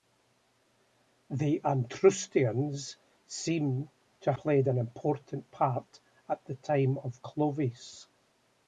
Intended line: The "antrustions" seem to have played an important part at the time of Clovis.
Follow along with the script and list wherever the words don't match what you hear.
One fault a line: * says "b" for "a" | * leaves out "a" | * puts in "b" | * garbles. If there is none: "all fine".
* leaves out "have"